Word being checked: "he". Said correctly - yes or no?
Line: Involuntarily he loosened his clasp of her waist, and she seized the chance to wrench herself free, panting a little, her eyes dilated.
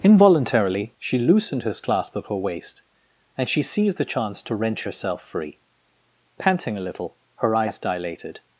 no